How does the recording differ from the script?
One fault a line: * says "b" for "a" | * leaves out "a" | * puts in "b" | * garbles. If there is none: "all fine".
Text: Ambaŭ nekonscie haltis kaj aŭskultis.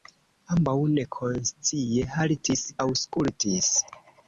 * leaves out "kaj"